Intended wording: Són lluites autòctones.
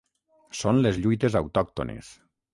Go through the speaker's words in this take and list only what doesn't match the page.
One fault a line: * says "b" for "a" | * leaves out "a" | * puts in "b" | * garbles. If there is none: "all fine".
* puts in "les"